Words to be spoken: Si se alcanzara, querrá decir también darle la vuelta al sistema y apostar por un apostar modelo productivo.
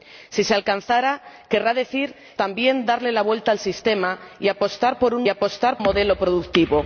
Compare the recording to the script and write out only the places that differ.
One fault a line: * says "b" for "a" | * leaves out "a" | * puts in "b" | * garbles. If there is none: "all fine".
all fine